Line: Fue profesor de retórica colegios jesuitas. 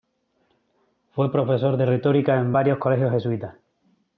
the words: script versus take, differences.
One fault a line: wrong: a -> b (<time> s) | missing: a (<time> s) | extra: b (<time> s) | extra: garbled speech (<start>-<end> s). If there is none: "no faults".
extra: en varios (2.4 s)